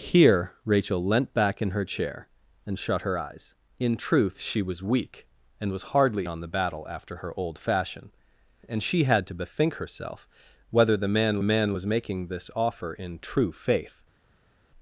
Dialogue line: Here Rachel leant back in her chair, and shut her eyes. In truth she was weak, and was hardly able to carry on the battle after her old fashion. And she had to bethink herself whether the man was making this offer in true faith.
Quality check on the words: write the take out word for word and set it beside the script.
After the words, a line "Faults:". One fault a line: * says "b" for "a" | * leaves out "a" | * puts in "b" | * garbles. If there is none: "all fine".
Here Rachel leant back in her chair, and shut her eyes. In truth she was weak, and was hardly on the battle after her old fashion. And she had to bethink herself whether the man man was making this offer in true faith.
Faults:
* leaves out "able to carry"
* puts in "man"